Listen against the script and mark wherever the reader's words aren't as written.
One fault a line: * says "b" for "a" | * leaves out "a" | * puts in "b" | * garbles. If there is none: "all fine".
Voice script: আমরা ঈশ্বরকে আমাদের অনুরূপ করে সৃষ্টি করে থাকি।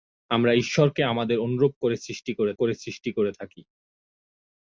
* puts in "করে সৃষ্টি করে"